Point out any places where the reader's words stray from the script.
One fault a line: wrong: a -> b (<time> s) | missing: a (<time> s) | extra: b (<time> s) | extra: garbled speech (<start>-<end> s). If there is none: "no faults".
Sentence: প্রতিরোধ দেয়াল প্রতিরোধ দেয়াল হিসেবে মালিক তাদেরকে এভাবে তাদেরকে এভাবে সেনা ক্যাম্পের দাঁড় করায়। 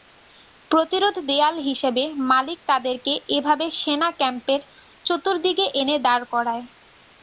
missing: প্রতিরোধ দেয়াল (1.5 s)
wrong: তাদেরকে এভাবে সেনা ক্যাম্পের -> সেনা ক্যাম্পের চতুর্দিকে এনে (3.8 s)